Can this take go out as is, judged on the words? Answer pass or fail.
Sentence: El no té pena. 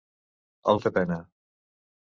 pass